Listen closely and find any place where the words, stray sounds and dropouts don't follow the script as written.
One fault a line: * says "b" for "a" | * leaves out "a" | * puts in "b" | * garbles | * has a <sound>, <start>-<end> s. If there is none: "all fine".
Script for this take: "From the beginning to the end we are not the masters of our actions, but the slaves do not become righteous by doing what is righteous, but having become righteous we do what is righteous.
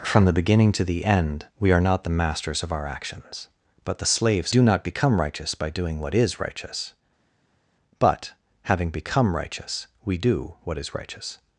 all fine